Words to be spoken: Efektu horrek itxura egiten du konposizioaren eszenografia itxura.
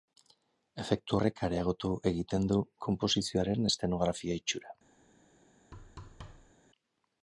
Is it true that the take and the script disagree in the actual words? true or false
true